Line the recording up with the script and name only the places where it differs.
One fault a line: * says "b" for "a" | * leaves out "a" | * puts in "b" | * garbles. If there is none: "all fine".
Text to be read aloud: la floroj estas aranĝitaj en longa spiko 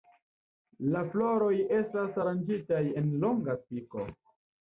all fine